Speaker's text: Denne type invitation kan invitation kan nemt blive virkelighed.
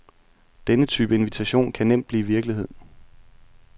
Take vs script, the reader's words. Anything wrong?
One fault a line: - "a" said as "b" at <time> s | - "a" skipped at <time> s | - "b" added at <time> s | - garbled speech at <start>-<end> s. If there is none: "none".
- "invitation kan" skipped at 1.9 s